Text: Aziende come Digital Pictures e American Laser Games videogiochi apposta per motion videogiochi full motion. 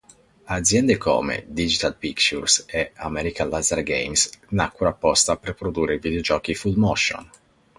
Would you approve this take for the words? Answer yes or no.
no